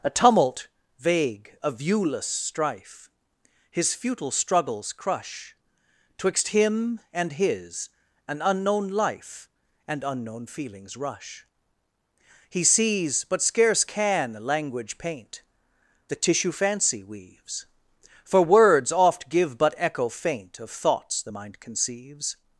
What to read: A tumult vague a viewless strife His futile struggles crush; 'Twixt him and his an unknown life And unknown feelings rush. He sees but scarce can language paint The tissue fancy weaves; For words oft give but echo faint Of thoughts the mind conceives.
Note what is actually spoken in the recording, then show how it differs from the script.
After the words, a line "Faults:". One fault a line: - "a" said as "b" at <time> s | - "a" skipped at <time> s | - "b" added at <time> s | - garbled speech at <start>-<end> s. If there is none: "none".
A tumult vague a viewless strife His futile struggles crush; 'Twixt him and his an unknown life And unknown feelings rush. He sees but scarce can language paint The tissue fancy weaves; For words oft give but echo faint Of thoughts the mind conceives.
Faults:
none